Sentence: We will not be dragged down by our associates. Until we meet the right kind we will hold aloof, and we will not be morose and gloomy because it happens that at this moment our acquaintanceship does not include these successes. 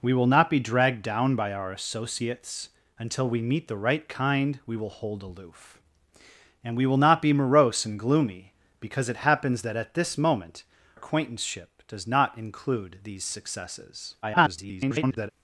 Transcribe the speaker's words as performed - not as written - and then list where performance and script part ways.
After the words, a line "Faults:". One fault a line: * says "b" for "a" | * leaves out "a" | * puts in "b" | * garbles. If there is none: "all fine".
We will not be dragged down by our associates. Until we meet the right kind we will hold aloof, and we will not be morose and gloomy because it happens that at this moment acquaintanceship does not include these successes. [garbled]
Faults:
* leaves out "our"
* garbles